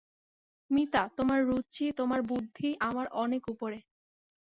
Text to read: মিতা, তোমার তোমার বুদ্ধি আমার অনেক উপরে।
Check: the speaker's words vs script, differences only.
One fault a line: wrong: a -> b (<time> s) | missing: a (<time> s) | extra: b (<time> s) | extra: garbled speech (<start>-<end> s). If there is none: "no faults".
extra: রুচি (1.5 s)